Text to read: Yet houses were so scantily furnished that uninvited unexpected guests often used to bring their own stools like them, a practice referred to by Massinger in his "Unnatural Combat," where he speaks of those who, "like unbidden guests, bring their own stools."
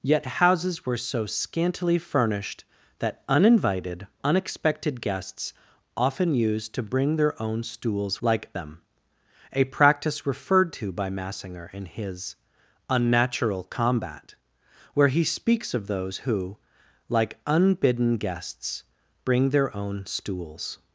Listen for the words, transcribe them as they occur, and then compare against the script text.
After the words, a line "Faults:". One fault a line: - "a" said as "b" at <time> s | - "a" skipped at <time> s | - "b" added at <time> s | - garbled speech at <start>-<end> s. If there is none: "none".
Yet houses were so scantily furnished that uninvited unexpected guests often used to bring their own stools like them, a practice referred to by Massinger in his "Unnatural Combat," where he speaks of those who, "like unbidden guests, bring their own stools."
Faults:
none